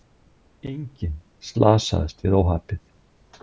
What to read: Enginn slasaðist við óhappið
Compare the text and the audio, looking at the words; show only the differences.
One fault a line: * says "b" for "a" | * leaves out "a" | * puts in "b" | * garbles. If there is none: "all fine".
all fine